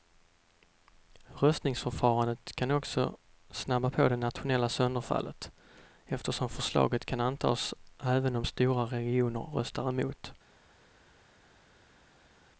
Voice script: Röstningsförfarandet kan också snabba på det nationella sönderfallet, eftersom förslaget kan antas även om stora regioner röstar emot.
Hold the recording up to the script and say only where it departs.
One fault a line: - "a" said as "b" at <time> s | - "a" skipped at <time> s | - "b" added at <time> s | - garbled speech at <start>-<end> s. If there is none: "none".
none